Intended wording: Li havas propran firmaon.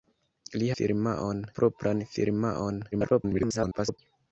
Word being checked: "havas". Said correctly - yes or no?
no